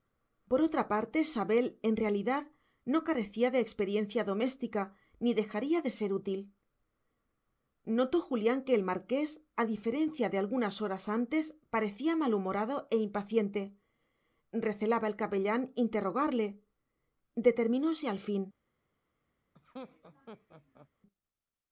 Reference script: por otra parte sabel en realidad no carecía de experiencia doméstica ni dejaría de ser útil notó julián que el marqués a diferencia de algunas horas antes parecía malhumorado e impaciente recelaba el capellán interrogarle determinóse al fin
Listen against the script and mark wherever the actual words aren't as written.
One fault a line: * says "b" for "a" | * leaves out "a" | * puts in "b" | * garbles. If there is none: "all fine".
all fine